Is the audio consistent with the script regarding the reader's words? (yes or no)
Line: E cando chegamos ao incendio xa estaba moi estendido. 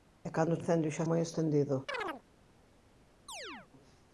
no